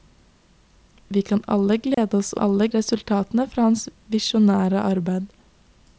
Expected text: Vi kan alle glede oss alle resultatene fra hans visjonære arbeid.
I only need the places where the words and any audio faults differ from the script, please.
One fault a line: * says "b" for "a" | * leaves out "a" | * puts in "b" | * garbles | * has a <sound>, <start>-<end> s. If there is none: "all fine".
* has a dropout, 1.9-2.0 s